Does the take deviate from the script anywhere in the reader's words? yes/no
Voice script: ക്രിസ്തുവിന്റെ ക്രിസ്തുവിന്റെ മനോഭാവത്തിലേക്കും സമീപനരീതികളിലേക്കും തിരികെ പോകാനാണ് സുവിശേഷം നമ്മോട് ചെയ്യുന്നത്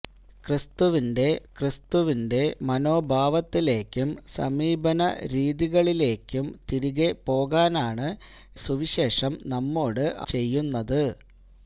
no